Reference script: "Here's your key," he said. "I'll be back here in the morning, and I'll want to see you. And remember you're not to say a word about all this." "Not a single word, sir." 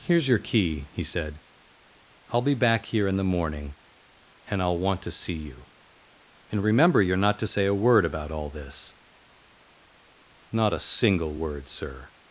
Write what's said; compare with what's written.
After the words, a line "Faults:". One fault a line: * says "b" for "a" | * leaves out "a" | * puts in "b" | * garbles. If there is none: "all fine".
"Here's your key," he said. "I'll be back here in the morning, and I'll want to see you. And remember you're not to say a word about all this." "Not a single word, sir."
Faults:
all fine